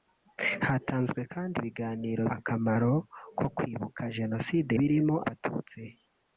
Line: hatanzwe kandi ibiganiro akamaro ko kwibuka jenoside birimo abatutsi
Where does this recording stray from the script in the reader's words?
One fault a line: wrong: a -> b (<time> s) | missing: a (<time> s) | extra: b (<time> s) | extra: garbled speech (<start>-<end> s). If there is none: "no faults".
no faults